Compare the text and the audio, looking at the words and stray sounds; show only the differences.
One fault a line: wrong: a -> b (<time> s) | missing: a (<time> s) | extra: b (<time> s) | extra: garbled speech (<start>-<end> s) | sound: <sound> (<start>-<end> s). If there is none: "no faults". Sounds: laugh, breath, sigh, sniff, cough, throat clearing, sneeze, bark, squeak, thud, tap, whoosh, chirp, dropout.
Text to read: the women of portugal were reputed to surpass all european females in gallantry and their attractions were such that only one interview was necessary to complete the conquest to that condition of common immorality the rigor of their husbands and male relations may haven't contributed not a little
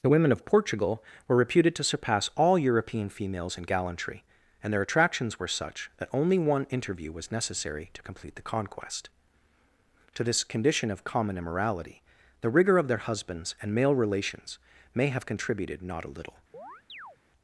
wrong: that -> this (10.2 s)
wrong: haven't -> have (15.1 s)
sound: chirp (16.5-17.2 s)